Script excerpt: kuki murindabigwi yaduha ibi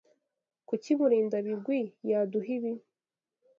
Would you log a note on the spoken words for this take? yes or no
no